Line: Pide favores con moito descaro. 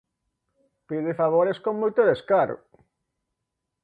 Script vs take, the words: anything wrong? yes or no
no